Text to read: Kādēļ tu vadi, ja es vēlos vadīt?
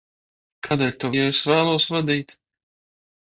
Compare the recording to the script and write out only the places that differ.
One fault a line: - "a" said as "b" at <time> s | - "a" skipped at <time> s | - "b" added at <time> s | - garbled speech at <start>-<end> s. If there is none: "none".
- "vadi" skipped at 1.1 s